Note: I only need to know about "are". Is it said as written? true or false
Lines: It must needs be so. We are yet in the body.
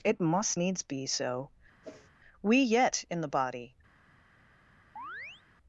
false